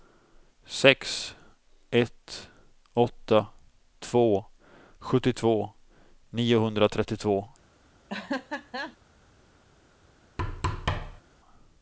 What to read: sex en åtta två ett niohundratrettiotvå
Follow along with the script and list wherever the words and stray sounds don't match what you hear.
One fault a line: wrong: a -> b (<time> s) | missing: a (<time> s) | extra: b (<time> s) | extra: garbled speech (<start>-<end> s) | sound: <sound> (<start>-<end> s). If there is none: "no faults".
wrong: en -> ett (1.9 s)
wrong: ett -> sjuttiotvå (5.0 s)
sound: laugh (8.1-9.0 s)
sound: thud (10.4-11.2 s)